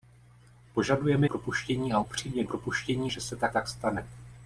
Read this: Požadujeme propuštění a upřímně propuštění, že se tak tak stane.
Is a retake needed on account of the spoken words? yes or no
no